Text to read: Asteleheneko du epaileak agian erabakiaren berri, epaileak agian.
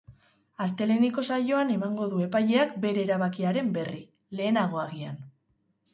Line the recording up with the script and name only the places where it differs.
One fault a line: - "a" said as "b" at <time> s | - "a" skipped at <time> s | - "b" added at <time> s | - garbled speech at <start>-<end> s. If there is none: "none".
- "saioan emango" added at 1.4 s
- "agian" said as "bere" at 2.9 s
- "epaileak" said as "lehenago" at 4.4 s